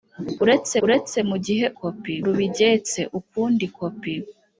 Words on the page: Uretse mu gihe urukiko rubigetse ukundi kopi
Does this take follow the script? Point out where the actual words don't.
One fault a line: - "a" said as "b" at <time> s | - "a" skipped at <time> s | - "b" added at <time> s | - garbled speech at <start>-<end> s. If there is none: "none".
- "uretse" added at 0.8 s
- "urukiko" said as "kopi" at 1.8 s